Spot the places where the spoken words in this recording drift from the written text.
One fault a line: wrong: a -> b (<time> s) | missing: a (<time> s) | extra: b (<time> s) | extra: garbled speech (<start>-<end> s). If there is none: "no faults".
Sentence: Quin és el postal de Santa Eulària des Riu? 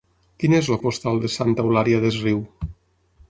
no faults